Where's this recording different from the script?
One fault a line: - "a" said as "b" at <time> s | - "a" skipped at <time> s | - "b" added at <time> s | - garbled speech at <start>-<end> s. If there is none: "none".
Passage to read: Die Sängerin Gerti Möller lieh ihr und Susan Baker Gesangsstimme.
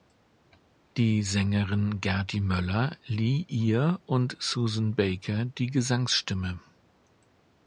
- "die" added at 5.5 s